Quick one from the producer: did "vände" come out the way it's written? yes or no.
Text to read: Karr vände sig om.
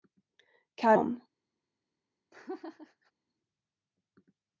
no